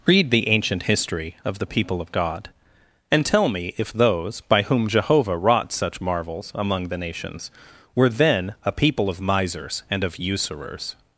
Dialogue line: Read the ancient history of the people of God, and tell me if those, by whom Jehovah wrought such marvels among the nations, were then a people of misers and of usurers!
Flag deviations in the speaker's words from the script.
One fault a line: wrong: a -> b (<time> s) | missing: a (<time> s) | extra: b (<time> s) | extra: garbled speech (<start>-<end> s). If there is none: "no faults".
no faults